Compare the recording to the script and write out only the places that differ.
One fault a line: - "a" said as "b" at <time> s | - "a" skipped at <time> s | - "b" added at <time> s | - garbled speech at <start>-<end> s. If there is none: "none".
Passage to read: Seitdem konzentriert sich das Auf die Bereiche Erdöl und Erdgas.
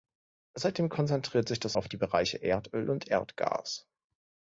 none